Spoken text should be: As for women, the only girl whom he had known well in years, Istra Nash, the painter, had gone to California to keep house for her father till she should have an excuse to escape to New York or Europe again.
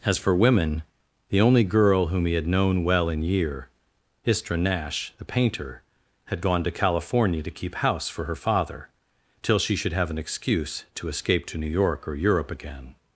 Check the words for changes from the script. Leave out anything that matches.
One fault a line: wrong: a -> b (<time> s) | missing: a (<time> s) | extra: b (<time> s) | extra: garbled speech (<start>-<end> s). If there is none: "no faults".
wrong: years -> year (3.2 s)